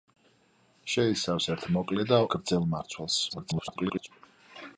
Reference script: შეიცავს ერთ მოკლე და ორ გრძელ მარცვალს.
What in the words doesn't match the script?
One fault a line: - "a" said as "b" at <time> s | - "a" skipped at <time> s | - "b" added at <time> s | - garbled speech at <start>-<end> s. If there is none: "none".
- "ორ" skipped at 2.2 s
- garbled speech at 3.3-4.1 s